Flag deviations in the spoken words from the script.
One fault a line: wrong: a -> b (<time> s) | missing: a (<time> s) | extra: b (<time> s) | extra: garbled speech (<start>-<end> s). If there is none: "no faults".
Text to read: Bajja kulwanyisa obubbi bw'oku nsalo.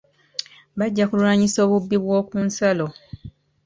no faults